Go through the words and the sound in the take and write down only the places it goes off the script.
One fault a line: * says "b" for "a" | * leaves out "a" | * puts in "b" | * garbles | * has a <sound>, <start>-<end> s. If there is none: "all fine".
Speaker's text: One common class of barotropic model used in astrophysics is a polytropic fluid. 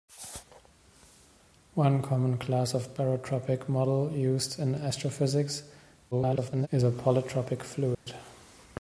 * garbles
* has a dropout, 7.9-8.1 s